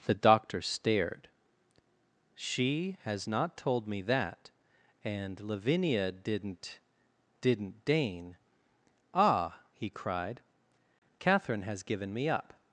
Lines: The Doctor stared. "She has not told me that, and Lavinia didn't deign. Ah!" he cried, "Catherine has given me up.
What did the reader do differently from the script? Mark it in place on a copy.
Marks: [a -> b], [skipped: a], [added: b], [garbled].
The Doctor stared. "She has not told me that, and Lavinia didn't [added: didn't] deign. Ah!" he cried, "Catherine has given me up.